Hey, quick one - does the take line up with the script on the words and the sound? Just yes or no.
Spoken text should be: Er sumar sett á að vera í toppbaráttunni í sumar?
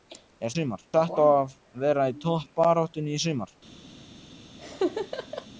no